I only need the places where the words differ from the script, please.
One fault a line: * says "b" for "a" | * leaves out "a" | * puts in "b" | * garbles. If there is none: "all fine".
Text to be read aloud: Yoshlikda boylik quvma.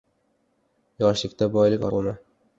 all fine